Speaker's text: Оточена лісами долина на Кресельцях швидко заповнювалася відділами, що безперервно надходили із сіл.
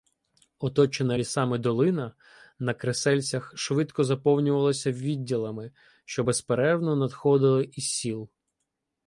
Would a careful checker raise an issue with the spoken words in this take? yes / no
no